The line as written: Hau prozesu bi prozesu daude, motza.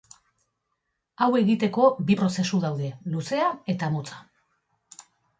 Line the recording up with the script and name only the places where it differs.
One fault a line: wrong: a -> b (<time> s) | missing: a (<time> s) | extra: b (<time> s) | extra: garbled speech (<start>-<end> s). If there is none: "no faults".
wrong: prozesu -> egiteko (1.4 s)
extra: luzea eta (3.2 s)